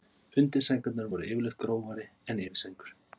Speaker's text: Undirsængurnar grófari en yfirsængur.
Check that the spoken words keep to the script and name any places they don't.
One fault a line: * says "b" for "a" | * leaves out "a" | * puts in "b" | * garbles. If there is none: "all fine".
* puts in "voru yfirleitt"